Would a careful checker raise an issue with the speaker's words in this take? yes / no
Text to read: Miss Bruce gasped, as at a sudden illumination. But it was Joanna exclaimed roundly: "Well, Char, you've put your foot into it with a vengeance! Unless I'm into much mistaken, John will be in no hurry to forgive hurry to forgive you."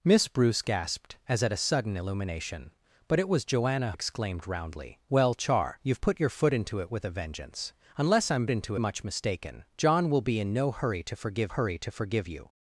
no